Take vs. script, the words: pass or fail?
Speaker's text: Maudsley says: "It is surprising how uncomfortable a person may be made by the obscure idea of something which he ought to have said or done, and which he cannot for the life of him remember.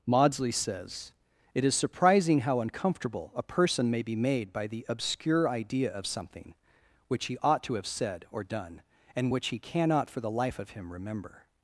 pass